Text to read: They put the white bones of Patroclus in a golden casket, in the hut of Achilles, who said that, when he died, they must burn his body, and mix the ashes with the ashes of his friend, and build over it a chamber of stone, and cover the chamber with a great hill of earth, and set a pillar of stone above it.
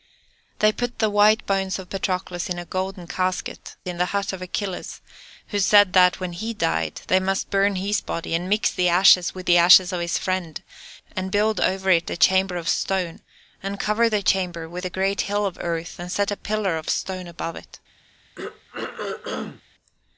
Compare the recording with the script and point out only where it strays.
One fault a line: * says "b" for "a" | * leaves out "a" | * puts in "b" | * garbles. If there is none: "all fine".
all fine